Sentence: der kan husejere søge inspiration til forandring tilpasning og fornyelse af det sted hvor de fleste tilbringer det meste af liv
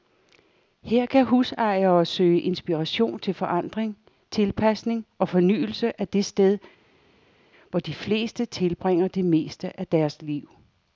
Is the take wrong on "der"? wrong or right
wrong